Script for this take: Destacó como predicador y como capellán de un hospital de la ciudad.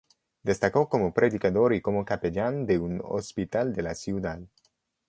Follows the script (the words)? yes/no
yes